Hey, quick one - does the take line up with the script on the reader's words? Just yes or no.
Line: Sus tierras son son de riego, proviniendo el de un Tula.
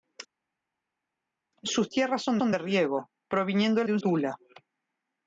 yes